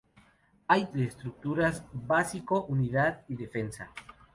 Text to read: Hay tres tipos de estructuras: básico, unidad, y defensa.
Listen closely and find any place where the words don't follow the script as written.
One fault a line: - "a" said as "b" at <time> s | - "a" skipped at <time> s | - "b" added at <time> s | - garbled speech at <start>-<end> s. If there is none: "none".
- "tres tipos" skipped at 0.9 s